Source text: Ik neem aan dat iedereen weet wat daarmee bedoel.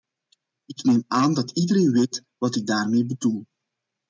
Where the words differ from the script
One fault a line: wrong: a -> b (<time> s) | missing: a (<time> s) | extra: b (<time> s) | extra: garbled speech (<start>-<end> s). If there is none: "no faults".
extra: ik (2.6 s)